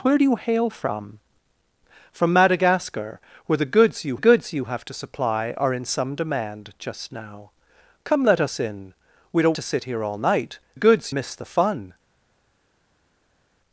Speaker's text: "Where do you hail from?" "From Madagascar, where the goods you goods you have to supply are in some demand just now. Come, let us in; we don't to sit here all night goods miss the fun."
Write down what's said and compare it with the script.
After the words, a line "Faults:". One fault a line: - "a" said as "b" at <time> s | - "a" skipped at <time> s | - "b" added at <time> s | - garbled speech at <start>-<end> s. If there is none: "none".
"Where do you hail from?" "From Madagascar, where the goods you goods you have to supply are in some demand just now. Come, let us in; we don't to sit here all night goods miss the fun."
Faults:
none